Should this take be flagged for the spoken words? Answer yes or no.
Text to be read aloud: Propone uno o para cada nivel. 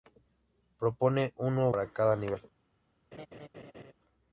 no